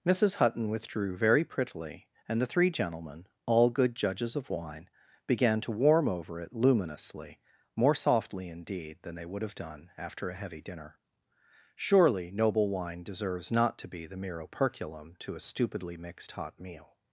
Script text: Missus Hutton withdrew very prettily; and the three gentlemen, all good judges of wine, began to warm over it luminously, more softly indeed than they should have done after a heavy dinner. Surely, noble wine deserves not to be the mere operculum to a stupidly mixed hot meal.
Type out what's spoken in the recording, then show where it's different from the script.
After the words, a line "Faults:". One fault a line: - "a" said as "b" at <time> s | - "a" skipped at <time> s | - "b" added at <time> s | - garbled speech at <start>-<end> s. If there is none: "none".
Missus Hutton withdrew very prettily; and the three gentlemen, all good judges of wine, began to warm over it luminously, more softly indeed than they would have done after a heavy dinner. Surely, noble wine deserves not to be the mere operculum to a stupidly mixed hot meal.
Faults:
- "should" said as "would" at 9.3 s